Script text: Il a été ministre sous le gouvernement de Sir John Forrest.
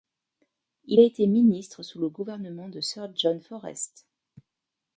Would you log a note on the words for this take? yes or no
no